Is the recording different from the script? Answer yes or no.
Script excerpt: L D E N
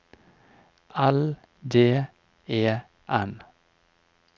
no